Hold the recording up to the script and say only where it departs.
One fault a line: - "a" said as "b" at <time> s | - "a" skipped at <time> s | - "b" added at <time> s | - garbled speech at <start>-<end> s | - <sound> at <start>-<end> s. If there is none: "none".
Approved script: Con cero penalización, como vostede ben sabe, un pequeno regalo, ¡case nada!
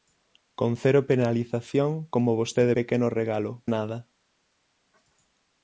- "ben sabe un" skipped at 2.7 s
- "case" skipped at 3.6 s